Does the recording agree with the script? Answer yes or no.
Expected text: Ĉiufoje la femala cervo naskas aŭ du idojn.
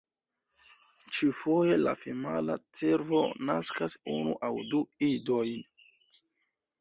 no